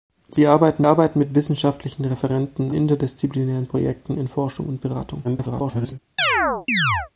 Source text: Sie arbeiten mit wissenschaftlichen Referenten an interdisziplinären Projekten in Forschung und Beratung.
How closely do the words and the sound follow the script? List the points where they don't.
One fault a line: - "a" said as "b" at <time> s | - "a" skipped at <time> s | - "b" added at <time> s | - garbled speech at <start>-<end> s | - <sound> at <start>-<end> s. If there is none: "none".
- "arbeiten" added at 0.8 s
- "an" skipped at 2.7 s
- garbled speech at 5.2-6.0 s
- chirp at 6.2-7.1 s